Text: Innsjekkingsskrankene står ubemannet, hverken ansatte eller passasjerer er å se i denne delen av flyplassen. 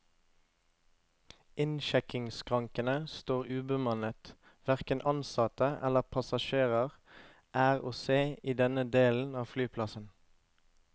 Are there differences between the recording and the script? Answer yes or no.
no